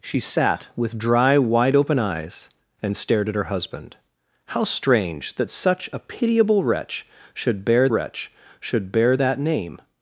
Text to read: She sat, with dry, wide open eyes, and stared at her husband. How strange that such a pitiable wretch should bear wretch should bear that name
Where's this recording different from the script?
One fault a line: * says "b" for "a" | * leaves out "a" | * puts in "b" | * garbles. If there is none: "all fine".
all fine